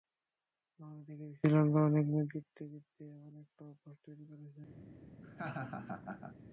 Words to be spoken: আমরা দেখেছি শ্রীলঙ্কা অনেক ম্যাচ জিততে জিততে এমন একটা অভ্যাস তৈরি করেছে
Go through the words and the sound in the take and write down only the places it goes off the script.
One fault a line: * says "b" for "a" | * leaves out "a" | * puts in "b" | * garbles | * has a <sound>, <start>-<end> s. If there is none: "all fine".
* has a laugh, 5.2-6.4 s